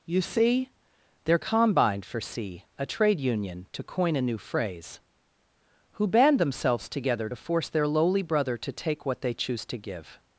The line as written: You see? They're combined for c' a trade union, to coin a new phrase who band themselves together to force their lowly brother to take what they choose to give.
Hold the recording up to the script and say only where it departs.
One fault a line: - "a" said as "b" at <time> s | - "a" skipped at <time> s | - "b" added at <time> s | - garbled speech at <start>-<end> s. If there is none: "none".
none